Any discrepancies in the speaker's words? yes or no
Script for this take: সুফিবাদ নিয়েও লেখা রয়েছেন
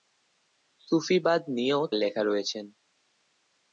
no